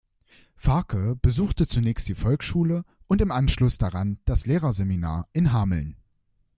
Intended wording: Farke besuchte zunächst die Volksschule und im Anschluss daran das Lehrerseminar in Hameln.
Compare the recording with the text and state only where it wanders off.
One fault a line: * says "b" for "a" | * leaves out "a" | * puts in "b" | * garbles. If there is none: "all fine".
all fine